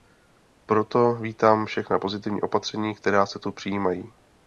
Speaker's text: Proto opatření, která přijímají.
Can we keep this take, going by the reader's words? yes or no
no